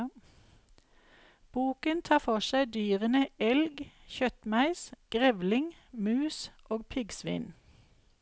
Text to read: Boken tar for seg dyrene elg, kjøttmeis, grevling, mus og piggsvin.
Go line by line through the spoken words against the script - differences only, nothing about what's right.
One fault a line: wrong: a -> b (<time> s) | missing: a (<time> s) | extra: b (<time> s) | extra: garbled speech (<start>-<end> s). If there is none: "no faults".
no faults